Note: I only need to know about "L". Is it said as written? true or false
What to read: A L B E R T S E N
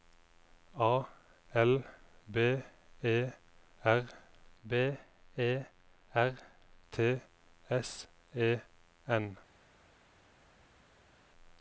true